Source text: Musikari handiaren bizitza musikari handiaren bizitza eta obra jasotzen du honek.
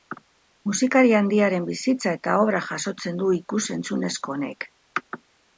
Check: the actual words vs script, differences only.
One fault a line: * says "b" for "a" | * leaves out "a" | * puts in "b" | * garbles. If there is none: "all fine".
* leaves out "musikari handiaren bizitza"
* puts in "ikus entzunezko"